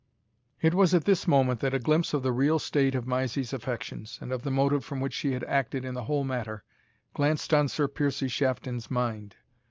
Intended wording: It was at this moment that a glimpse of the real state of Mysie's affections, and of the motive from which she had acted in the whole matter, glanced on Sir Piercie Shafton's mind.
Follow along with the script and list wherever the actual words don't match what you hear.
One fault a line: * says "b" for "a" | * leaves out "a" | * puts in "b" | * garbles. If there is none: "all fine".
all fine